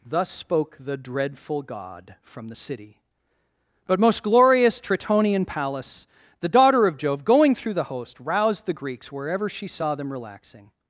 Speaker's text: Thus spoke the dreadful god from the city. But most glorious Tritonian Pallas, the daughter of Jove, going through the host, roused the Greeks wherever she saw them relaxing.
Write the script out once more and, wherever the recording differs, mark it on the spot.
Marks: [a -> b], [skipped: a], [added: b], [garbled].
Thus spoke the dreadful god from the city. But most glorious Tritonian Pallas, the daughter of Jove, going through the host, roused the Greeks wherever she saw them relaxing.